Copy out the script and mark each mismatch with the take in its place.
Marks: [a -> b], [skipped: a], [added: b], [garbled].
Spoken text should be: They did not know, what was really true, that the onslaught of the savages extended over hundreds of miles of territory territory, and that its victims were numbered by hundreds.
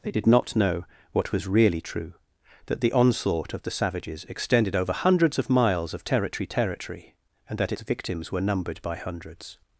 They did not know, what was really true, that the onslaught of the savages extended over hundreds of miles of territory territory, and that its victims were numbered by hundreds.